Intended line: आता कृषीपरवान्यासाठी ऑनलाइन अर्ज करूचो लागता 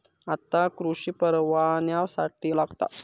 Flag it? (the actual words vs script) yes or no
yes